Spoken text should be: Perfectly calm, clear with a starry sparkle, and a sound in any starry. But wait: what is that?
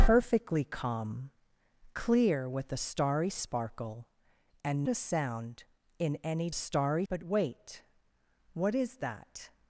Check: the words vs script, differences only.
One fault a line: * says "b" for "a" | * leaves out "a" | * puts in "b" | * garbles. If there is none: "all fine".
all fine